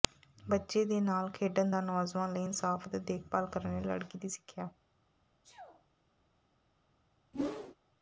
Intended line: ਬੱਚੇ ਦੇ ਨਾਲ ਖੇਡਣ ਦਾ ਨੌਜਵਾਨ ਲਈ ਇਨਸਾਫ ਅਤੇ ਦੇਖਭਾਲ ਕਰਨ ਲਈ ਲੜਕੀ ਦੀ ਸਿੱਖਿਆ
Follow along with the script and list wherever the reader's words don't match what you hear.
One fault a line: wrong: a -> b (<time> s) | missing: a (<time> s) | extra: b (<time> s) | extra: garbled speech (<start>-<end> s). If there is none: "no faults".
no faults